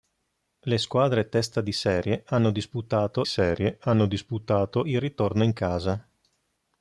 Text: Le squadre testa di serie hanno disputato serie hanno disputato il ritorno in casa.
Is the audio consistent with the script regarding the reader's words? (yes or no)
yes